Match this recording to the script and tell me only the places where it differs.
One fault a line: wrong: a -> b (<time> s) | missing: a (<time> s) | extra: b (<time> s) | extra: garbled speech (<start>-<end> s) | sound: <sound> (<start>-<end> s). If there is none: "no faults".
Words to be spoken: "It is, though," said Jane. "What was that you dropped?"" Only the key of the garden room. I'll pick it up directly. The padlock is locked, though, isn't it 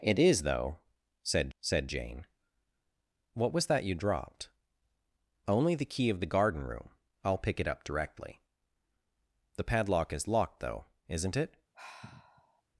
extra: said (1.6 s)
sound: sigh (11.7-12.6 s)